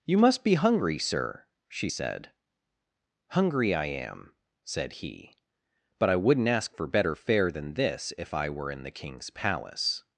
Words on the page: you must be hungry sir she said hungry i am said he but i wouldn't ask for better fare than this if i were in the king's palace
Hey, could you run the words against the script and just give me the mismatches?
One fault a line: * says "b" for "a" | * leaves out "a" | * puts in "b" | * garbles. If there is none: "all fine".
all fine